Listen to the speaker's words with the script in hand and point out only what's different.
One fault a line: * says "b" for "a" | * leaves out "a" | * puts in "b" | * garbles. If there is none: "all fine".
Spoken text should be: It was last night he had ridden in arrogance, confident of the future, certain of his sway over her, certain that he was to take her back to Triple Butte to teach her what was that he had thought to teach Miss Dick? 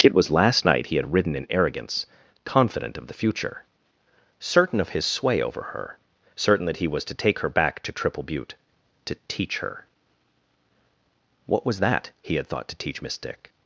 all fine